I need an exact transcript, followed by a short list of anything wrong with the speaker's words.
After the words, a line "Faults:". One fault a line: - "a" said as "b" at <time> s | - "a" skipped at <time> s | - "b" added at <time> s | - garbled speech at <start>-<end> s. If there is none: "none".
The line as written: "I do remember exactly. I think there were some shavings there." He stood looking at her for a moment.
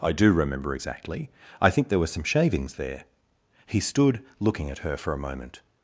"I do remember exactly. I think there were some shavings there." He stood looking at her for a moment.
Faults:
none